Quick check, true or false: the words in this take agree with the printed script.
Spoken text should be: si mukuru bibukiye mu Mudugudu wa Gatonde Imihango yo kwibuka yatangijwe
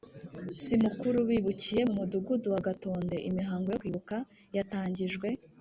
true